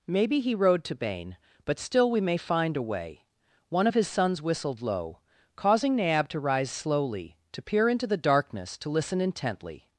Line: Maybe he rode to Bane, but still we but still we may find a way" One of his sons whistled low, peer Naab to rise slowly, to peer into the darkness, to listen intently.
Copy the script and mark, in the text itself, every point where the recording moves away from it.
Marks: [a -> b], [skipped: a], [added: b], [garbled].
Maybe he rode to Bane, but still we [skipped: but still we] may find a way" One of his sons whistled low, [peer -> causing] Naab to rise slowly, to peer into the darkness, to listen intently.